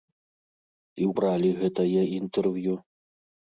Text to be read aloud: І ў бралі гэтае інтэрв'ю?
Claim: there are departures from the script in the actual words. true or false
false